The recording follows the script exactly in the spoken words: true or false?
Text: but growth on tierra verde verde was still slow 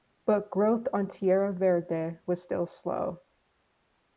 false